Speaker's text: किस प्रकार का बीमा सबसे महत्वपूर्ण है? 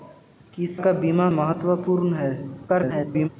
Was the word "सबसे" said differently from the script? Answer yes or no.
yes